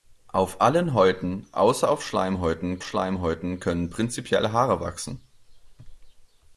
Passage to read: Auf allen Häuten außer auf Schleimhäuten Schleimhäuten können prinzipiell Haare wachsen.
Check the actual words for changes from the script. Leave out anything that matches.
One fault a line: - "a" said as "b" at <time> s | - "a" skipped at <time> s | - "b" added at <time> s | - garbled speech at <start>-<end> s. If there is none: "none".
none